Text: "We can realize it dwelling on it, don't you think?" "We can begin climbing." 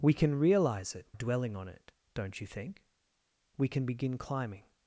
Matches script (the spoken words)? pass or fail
pass